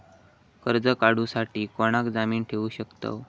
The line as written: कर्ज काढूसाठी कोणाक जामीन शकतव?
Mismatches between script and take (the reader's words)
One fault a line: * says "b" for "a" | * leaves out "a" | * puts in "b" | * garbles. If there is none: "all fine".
* puts in "ठेवू"